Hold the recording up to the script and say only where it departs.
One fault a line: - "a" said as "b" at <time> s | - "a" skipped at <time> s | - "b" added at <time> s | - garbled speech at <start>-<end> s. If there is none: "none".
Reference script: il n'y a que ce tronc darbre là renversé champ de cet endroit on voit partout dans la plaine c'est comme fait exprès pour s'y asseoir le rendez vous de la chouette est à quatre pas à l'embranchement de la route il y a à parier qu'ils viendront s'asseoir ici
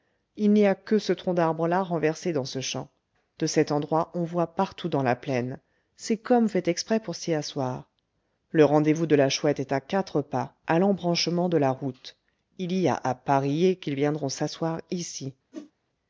- "dans ce" added at 2.3 s